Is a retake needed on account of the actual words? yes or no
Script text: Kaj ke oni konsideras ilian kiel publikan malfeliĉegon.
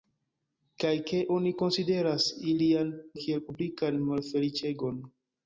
no